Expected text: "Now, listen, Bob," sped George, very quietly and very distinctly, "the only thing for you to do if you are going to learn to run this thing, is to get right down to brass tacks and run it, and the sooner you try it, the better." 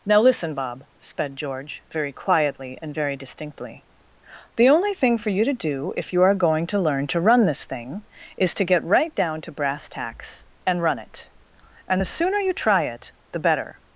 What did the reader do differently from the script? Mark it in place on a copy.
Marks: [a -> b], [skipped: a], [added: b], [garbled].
"Now, listen, Bob," sped George, very quietly and very distinctly, "the only thing for you to do if you are going to learn to run this thing, is to get right down to brass tacks and run it, and the sooner you try it, the better."